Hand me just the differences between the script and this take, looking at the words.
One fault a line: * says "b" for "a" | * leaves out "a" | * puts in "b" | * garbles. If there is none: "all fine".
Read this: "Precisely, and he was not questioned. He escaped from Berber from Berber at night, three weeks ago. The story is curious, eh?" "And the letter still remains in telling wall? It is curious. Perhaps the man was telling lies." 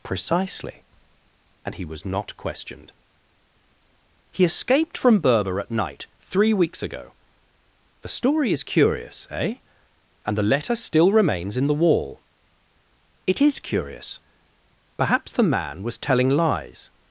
* leaves out "from Berber"
* says "the" for "telling"